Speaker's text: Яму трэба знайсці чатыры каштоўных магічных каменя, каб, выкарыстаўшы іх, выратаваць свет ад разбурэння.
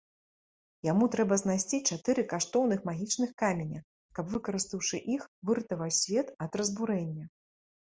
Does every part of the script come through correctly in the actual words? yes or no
yes